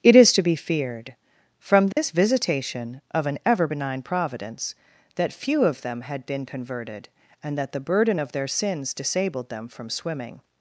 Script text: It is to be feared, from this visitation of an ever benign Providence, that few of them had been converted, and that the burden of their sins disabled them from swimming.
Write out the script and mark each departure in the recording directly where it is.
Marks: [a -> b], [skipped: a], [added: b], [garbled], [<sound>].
It is to be feared, from this [dropout] visitation of an ever benign Providence, that few of them had been converted, and that the burden of their sins disabled them from swimming.